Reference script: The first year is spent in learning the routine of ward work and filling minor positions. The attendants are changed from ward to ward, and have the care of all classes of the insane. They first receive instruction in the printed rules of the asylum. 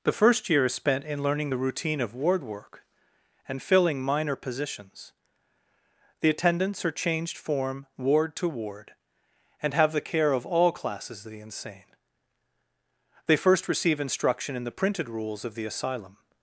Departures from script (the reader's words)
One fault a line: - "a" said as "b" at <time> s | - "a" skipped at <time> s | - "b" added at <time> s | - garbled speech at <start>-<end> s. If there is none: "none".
- "from" said as "form" at 7.4 s